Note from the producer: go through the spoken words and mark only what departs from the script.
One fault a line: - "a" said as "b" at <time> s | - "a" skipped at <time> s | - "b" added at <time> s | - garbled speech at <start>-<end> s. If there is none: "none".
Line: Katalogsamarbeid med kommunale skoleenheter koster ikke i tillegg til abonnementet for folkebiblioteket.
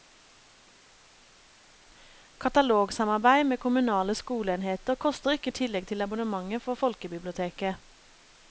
none